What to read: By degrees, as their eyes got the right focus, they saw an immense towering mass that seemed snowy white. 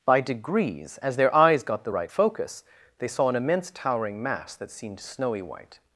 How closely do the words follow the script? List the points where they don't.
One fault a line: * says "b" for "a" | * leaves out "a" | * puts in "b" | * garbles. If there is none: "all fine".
all fine